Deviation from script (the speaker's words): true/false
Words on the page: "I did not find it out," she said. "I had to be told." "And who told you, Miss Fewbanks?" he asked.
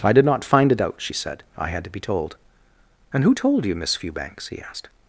false